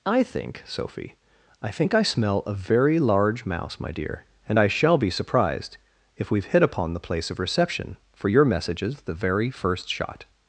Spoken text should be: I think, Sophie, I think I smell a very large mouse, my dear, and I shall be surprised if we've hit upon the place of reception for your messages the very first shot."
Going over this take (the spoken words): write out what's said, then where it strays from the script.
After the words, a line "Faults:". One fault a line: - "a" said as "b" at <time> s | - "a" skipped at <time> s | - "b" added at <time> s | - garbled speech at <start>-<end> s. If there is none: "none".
I think, Sophie, I think I smell a very large mouse, my dear, and I shall be surprised if we've hit upon the place of reception for your messages the very first shot."
Faults:
none